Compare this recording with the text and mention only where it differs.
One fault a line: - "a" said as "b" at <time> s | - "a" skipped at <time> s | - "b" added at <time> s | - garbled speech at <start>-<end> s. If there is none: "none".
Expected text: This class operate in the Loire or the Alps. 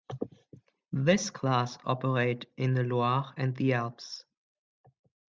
- "or" said as "and" at 3.4 s